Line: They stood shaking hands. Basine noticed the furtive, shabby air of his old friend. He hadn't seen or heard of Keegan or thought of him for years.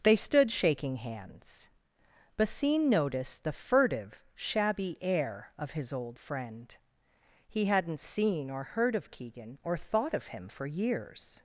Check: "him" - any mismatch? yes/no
no